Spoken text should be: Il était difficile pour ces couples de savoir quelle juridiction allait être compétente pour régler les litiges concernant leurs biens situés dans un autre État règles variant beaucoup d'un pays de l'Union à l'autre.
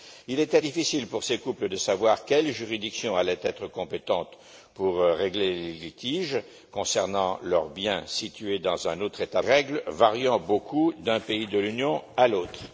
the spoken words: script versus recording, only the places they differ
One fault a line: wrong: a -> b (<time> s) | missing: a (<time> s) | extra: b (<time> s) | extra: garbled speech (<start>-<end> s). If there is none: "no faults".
no faults